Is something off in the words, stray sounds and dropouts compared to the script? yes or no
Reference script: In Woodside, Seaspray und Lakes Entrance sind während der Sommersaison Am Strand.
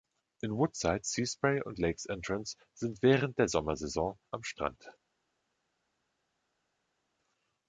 no